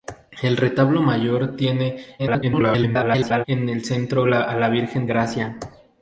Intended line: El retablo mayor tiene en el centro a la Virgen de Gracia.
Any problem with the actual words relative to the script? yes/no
yes